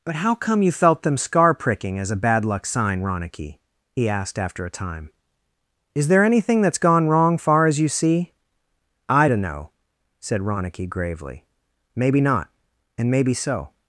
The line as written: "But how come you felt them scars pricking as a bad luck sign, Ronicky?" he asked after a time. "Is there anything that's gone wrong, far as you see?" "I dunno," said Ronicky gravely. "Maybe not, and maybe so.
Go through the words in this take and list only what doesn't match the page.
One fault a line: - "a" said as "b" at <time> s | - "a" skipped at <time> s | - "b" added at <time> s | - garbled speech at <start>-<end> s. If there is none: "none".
- "scars" said as "scar" at 1.2 s